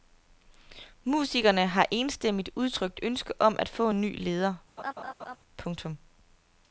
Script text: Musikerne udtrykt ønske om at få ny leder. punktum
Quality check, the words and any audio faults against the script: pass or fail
fail